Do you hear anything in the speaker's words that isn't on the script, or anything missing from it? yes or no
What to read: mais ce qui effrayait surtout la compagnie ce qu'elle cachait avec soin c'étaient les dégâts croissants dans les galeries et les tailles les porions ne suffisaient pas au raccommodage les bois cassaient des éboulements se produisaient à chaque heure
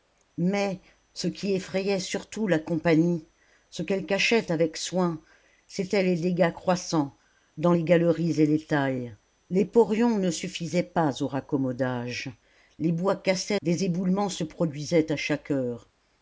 no